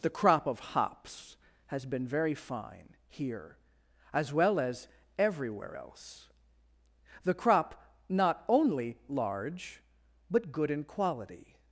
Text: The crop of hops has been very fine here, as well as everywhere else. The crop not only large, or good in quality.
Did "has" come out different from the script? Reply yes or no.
no